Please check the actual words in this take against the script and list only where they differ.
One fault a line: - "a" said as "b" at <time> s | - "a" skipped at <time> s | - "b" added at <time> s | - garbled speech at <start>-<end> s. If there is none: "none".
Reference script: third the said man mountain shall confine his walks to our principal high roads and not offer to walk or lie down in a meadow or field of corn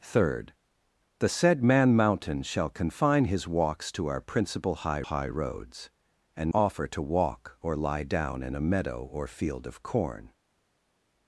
- "high" added at 5.0 s
- "not" skipped at 6.5 s